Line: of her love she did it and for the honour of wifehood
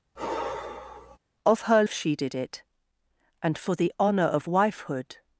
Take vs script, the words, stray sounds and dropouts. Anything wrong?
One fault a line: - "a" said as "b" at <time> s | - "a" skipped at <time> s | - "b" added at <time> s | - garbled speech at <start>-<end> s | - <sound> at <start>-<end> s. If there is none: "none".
- sigh at 0.2-1.2 s
- "love" skipped at 1.8 s